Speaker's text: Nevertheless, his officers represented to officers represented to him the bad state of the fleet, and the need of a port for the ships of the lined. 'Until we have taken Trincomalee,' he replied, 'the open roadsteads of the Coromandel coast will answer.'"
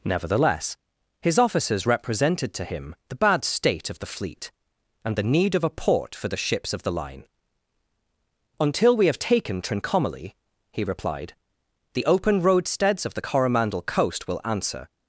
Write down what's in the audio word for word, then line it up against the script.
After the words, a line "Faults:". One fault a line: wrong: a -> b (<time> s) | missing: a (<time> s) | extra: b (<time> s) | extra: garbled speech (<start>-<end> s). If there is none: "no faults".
Nevertheless, his officers represented to him the bad state of the fleet, and the need of a port for the ships of the line. 'Until we have taken Trincomalee,' he replied, 'the open roadsteads of the Coromandel coast will answer.'"
Faults:
missing: officers represented to (2.6 s)
wrong: lined -> line (6.9 s)